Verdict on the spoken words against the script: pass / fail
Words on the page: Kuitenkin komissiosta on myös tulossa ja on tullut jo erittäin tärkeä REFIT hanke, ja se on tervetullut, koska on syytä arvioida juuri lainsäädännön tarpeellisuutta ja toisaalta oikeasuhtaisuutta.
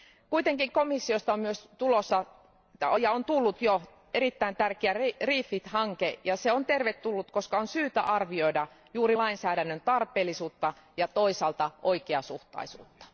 pass